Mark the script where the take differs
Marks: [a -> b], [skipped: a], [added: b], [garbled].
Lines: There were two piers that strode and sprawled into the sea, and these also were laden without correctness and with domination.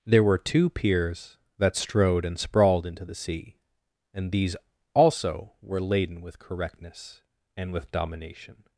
There were two piers that strode and sprawled into the sea, and these also were laden [without -> with] correctness and with domination.